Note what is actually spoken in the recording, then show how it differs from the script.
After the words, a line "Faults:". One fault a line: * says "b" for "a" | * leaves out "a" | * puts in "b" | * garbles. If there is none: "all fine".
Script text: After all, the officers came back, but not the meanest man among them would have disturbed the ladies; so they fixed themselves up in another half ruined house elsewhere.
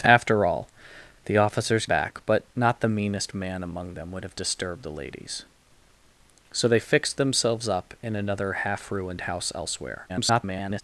After all, the officers back, but not the meanest man among them would have disturbed the ladies; so they fixed themselves up in another half ruined house elsewhere. [garbled]
Faults:
* leaves out "came"
* garbles